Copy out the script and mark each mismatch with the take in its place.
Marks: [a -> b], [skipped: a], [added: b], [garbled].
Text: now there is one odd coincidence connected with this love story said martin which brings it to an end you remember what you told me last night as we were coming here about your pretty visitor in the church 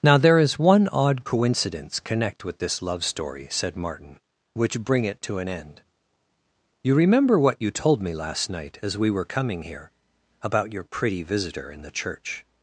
now there is one odd coincidence [connected -> connect] with this love story said martin which [brings -> bring] it to an end you remember what you told me last night as we were coming here about your pretty visitor in the church